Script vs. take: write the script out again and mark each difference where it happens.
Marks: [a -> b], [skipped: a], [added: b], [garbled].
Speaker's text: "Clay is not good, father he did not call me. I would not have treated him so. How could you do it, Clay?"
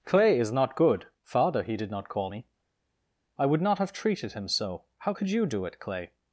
"Clay is not good, father he did not call me. I would not have treated him so. How could you do it, Clay?"